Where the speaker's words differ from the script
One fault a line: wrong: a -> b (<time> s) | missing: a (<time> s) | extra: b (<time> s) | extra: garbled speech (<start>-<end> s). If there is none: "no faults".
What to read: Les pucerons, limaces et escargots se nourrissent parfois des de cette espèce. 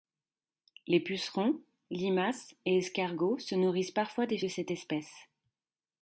no faults